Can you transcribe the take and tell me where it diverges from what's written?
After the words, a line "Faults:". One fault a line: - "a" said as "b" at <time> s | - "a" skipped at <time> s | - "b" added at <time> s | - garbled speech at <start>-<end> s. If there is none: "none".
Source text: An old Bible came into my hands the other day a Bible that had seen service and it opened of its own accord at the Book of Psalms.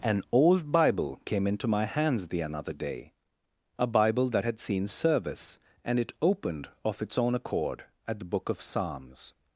An old Bible came into my hands the another day a Bible that had seen service and it opened of its own accord at the Book of Psalms.
Faults:
- "other" said as "another" at 2.4 s